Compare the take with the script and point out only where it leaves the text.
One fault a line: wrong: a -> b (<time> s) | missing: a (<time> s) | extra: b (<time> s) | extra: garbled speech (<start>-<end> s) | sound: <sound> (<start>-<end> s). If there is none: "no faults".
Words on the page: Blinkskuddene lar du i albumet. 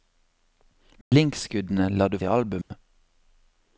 sound: dropout (1.0-1.1 s)
sound: dropout (2.6-2.7 s)